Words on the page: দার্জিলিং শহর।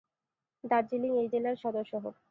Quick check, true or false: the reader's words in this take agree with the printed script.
false